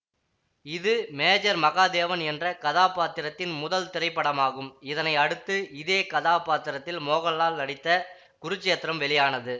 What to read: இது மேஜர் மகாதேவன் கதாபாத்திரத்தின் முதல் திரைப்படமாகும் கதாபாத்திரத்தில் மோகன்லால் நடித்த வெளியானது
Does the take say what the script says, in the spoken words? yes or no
no